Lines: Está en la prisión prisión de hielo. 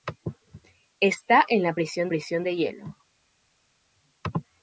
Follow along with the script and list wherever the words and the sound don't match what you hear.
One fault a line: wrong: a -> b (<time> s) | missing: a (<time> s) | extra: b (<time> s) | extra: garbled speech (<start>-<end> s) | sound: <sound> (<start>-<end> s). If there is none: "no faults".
no faults